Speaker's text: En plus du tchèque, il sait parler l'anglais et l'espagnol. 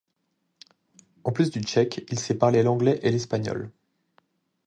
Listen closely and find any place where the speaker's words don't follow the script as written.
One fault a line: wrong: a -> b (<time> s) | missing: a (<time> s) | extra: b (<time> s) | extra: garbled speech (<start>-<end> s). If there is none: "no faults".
no faults